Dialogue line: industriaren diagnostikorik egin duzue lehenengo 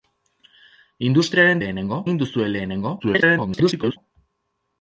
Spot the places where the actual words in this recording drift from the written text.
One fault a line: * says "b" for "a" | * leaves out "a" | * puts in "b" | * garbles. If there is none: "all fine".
* says "lehenengo" for "diagnostikorik"
* garbles